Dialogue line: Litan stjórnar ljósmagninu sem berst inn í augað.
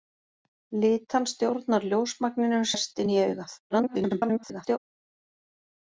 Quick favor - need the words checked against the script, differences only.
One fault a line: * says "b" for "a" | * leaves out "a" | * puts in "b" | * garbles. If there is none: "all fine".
* leaves out "sem"
* garbles